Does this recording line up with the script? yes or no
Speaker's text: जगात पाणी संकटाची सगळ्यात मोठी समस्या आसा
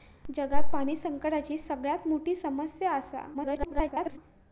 no